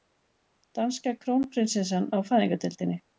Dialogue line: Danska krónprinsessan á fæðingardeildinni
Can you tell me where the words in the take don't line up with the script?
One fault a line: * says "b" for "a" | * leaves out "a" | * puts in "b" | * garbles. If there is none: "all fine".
all fine